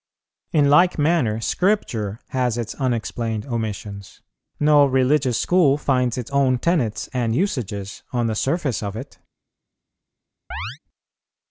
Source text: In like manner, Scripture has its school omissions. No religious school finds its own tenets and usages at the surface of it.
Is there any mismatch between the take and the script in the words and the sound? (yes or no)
yes